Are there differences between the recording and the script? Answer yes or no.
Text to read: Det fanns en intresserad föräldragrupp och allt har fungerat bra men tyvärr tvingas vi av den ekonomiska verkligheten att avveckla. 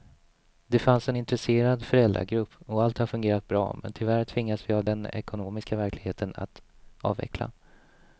no